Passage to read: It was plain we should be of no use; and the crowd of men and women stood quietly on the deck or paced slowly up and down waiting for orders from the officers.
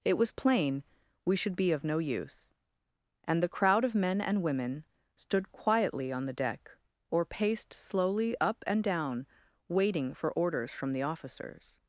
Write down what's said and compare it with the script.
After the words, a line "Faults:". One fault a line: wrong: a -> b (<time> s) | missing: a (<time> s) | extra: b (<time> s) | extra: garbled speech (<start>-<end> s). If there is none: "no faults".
It was plain we should be of no use; and the crowd of men and women stood quietly on the deck or paced slowly up and down waiting for orders from the officers.
Faults:
no faults